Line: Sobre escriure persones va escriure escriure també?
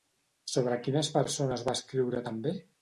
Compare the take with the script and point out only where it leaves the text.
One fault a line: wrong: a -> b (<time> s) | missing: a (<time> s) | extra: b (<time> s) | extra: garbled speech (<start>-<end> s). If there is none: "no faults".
wrong: escriure -> quines (0.9 s)
missing: escriure (2.3 s)